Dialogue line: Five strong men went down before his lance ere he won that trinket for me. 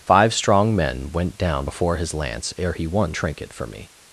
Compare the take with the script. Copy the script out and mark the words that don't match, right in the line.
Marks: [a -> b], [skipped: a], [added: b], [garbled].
Five strong men went down before his lance ere he won [skipped: that] trinket for me.